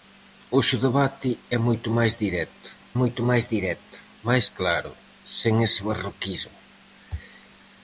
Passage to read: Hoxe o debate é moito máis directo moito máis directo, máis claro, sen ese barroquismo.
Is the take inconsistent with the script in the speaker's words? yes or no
no